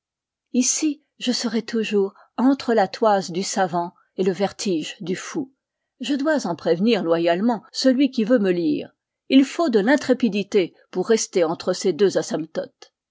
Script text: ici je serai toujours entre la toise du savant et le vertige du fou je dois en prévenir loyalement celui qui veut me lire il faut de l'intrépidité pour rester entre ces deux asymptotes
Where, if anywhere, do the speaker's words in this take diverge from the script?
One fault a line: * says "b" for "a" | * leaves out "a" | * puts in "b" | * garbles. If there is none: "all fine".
all fine